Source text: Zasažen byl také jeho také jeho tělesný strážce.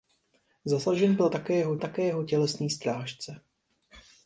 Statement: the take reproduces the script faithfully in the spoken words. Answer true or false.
true